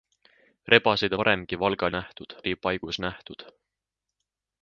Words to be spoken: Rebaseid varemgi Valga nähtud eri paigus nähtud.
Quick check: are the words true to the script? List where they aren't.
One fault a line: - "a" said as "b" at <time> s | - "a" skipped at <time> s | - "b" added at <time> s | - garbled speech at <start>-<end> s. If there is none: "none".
none